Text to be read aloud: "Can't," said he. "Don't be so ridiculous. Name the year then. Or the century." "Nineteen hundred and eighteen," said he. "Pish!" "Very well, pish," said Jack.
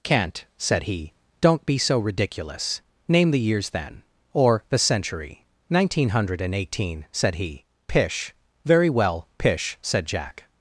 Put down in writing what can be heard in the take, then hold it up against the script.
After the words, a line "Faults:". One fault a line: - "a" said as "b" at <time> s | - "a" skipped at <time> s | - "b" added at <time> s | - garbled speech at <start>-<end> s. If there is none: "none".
"Can't," said he. "Don't be so ridiculous. Name the years then. Or the century." "Nineteen hundred and eighteen," said he. "Pish!" "Very well, pish," said Jack.
Faults:
- "year" said as "years" at 3.4 s